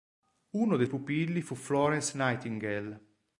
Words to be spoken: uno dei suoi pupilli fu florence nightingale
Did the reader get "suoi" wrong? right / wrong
wrong